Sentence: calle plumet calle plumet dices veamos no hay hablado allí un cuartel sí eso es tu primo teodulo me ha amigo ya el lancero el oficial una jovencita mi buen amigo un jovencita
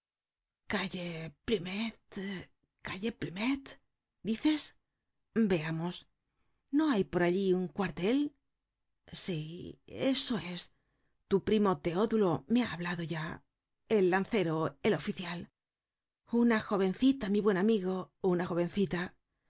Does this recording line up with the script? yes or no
no